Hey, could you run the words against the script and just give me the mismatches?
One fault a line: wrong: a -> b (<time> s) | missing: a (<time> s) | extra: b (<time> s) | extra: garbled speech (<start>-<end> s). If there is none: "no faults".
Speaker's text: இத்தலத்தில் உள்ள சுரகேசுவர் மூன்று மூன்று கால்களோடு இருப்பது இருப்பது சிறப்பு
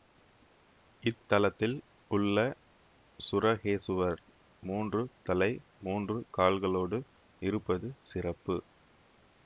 extra: தலை (5.2 s)
missing: இருப்பது (7.9 s)